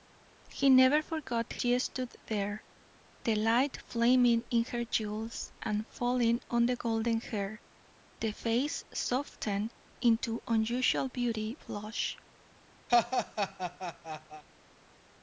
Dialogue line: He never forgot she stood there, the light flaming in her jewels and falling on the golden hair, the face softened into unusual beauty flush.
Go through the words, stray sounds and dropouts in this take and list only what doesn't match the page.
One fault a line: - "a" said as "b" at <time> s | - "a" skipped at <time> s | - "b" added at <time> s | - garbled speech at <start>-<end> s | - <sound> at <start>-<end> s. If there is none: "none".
- laugh at 12.9-14.4 s